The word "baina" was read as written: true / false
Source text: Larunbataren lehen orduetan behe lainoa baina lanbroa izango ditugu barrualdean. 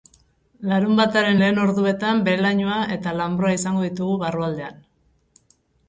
false